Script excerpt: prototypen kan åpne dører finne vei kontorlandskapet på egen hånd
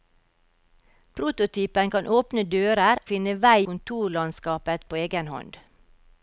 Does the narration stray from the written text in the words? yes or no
no